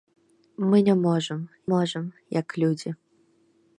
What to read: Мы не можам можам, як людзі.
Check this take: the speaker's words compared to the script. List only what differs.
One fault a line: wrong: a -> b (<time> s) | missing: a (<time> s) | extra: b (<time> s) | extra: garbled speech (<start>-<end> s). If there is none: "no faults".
no faults